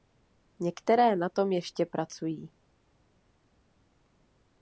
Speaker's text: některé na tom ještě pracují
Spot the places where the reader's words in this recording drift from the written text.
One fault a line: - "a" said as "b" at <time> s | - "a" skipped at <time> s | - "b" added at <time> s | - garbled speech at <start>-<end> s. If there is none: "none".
none